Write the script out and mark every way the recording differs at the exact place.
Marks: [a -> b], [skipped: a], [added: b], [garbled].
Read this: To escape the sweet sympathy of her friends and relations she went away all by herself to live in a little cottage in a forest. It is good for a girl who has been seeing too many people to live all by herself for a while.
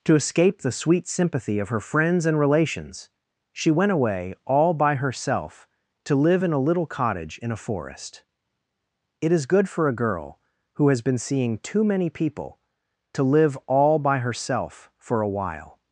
To escape the sweet sympathy of her friends and relations she went away all by herself to live in a little cottage in a forest. It is good for a girl who has been seeing too many people to live all by herself for a while.